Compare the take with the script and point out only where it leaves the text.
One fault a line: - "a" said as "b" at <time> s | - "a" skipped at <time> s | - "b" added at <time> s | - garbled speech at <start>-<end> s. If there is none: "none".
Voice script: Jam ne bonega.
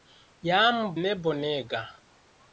none